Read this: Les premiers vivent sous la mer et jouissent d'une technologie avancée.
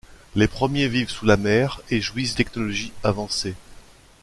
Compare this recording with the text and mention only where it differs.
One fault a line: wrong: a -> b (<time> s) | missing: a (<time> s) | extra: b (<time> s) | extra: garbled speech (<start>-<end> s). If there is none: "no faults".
missing: d'une (2.3 s)